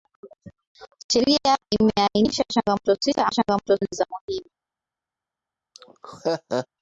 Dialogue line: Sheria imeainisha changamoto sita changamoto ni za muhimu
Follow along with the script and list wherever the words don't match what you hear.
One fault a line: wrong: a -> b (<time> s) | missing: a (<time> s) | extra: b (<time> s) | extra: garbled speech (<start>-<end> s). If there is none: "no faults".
no faults